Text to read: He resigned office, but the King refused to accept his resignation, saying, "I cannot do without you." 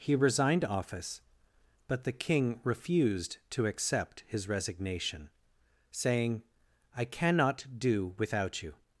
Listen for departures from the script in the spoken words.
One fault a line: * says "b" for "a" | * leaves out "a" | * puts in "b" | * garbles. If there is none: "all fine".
all fine